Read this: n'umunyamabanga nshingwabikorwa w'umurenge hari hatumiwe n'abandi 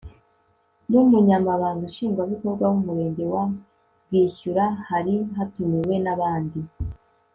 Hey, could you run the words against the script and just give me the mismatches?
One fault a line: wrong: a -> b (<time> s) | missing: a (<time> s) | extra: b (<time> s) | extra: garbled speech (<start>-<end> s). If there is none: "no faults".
extra: wa bwishyura (3.3 s)